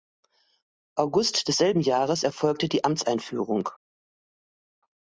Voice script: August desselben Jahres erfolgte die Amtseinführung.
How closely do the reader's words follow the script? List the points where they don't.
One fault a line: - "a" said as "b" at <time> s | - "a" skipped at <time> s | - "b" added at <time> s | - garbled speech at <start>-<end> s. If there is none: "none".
none